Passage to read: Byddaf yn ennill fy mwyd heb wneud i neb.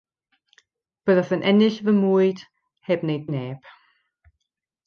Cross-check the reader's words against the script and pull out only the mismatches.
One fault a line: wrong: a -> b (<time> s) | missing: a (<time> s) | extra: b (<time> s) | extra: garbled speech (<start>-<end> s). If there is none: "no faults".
no faults